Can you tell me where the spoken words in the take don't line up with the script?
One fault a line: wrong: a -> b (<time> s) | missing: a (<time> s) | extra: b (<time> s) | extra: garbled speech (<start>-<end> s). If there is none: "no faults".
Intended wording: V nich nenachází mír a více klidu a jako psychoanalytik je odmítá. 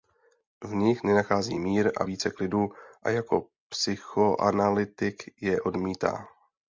no faults